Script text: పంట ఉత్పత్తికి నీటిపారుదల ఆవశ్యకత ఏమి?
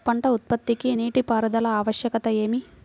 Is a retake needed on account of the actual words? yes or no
no